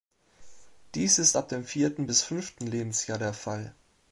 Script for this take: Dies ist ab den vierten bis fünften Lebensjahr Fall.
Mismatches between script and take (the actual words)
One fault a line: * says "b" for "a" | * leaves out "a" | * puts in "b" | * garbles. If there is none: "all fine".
* says "dem" for "den"
* puts in "der"